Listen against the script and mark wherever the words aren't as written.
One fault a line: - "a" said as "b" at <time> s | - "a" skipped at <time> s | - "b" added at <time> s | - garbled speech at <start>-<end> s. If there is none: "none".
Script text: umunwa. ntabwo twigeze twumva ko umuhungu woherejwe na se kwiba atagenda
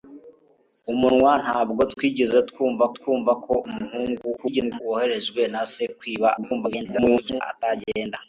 - "twumva" added at 3.0 s
- garbled speech at 4.4-4.8 s
- garbled speech at 6.4-7.4 s